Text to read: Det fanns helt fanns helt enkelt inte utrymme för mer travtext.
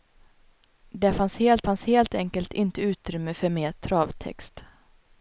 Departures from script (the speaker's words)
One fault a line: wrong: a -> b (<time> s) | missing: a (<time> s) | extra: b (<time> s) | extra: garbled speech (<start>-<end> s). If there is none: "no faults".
no faults